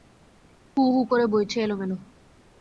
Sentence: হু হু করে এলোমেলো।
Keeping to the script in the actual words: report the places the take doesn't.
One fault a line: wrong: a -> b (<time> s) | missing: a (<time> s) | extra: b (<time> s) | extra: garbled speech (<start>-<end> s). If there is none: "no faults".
extra: বইছে (1.3 s)